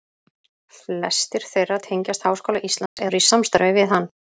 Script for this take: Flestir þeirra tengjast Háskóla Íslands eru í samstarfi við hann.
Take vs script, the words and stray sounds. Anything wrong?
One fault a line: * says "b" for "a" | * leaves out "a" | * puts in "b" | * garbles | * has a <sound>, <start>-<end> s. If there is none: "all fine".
* has a dropout, 2.9-3.0 s